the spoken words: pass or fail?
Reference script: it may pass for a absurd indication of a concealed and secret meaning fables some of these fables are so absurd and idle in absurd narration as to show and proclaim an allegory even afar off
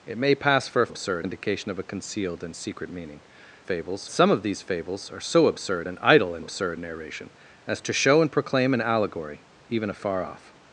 pass